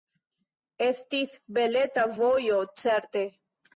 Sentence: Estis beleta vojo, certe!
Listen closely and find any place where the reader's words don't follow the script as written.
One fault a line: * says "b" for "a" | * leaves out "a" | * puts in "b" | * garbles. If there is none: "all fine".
all fine